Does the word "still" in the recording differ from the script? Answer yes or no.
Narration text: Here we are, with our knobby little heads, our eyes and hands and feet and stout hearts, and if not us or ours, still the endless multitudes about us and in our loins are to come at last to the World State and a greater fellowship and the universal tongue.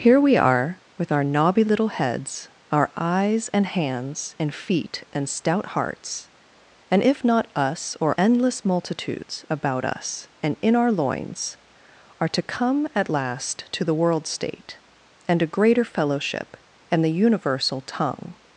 yes